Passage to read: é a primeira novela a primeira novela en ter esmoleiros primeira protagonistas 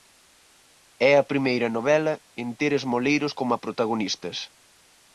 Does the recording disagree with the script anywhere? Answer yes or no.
yes